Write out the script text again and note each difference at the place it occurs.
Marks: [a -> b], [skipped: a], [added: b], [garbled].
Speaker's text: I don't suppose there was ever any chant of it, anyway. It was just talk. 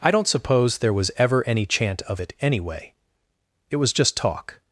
I don't suppose there was ever any chant of it, anyway. It was just talk.